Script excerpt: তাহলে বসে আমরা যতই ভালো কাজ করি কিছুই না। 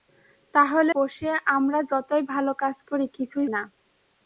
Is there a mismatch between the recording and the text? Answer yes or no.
no